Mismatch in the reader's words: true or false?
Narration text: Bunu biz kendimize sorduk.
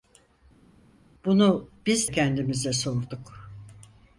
false